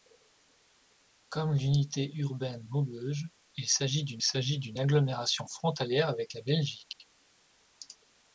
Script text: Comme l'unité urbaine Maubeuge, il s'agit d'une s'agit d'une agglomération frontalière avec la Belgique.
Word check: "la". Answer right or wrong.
right